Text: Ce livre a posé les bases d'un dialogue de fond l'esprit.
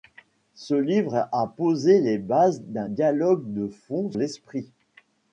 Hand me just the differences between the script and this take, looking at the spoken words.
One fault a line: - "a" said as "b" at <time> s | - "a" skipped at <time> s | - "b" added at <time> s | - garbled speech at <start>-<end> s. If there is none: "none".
none